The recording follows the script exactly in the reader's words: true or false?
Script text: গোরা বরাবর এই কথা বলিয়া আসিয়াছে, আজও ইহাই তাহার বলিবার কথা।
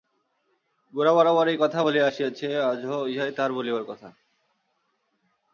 true